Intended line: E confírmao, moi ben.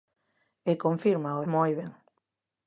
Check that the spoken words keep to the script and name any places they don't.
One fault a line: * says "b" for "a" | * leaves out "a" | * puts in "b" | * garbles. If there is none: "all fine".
all fine